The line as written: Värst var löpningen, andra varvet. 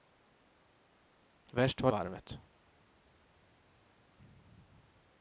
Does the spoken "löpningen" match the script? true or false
false